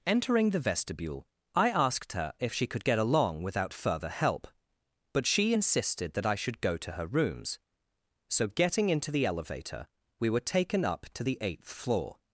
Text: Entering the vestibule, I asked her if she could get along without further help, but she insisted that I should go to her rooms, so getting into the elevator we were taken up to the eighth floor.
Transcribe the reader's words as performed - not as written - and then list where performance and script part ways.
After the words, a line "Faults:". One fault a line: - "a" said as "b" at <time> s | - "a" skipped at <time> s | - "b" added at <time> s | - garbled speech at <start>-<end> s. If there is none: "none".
Entering the vestibule, I asked her if she could get along without further help, but she insisted that I should go to her rooms, so getting into the elevator we were taken up to the eighth floor.
Faults:
none